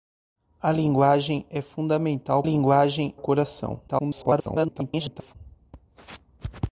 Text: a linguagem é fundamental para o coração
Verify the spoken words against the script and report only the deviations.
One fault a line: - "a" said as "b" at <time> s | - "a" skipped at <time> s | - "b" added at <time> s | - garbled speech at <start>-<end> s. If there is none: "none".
- "para" said as "linguagem" at 2.4 s
- garbled speech at 3.9-5.4 s